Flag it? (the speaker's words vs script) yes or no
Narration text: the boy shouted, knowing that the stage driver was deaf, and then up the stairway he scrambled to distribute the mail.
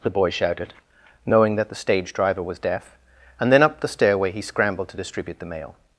no